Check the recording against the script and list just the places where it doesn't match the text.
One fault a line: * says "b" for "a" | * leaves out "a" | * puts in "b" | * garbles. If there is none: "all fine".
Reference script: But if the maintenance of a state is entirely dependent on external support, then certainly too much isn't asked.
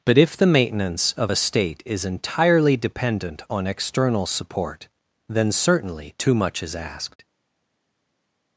* says "is" for "isn't"